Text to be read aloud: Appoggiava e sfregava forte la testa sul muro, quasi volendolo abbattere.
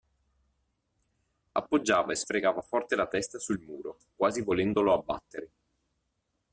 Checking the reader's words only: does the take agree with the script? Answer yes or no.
yes